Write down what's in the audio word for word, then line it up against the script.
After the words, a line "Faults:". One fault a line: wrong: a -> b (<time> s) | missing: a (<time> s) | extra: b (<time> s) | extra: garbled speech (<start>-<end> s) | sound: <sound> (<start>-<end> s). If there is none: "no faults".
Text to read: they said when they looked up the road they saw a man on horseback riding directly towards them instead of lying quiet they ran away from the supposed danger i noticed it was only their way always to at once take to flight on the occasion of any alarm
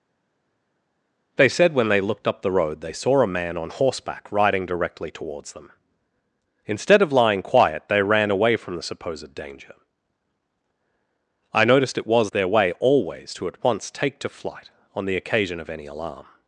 they said when they looked up the road they saw a man on horseback riding directly towards them instead of lying quiet they ran away from the supposed danger i noticed it was their way always to at once take to flight on the occasion of any alarm
Faults:
missing: only (12.3 s)